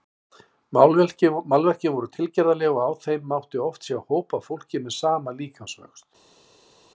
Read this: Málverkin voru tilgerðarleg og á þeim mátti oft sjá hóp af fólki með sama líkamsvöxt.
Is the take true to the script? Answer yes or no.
yes